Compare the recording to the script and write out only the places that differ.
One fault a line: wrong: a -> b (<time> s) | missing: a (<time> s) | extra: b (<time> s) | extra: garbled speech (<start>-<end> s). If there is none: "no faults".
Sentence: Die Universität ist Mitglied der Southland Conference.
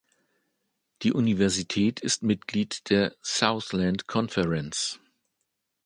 no faults